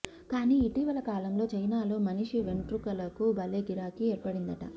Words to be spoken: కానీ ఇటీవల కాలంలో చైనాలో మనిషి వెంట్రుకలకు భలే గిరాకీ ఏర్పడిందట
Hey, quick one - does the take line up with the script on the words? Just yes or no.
yes